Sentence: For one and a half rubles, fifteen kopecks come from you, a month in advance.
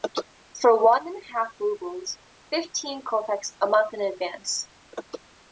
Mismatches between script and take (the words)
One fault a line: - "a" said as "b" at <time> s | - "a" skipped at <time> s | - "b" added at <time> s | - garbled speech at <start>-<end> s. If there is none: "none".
- "come from you" skipped at 3.5 s